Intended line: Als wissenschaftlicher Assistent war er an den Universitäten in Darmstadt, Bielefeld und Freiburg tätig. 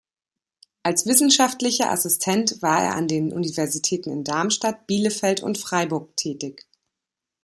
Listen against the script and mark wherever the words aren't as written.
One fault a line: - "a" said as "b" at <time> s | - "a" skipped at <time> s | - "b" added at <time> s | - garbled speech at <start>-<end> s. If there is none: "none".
none